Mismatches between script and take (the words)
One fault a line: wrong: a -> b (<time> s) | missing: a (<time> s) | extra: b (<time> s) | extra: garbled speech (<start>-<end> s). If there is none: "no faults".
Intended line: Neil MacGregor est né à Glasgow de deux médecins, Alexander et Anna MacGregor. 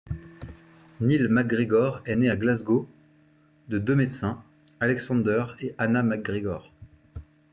no faults